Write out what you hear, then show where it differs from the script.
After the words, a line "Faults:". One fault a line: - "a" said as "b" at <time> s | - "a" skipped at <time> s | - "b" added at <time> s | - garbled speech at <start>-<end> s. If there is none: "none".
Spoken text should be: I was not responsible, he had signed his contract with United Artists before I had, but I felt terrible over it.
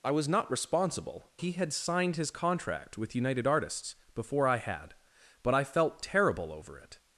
I was not responsible, he had signed his contract with United Artists before I had, but I felt terrible over it.
Faults:
none